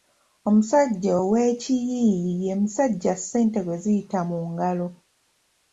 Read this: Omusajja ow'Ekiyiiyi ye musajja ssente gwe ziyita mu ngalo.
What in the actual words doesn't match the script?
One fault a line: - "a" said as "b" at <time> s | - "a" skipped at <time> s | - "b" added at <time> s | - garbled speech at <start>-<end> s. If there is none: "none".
none